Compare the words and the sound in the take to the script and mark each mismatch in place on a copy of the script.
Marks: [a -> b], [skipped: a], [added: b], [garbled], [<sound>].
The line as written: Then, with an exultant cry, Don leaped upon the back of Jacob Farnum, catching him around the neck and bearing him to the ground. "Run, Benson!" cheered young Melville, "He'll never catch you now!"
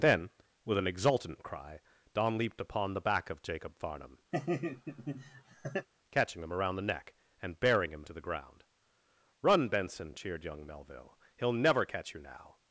Then, with an exultant cry, Don leaped upon the back of Jacob Farnum, [laugh] catching him around the neck and bearing him to the ground. "Run, Benson!" cheered young Melville, "He'll never catch you now!"